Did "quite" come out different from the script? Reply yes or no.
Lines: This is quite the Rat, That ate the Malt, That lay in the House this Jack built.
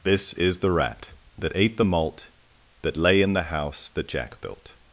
yes